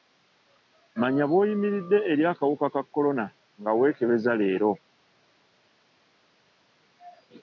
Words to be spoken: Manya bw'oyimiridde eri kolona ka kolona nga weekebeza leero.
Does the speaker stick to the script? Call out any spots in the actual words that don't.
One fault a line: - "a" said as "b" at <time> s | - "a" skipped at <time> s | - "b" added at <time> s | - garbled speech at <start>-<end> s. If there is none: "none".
- "kolona" said as "akawuka" at 2.3 s